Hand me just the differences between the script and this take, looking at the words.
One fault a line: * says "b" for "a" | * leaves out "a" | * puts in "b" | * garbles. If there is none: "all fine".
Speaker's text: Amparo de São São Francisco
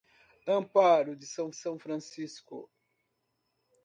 all fine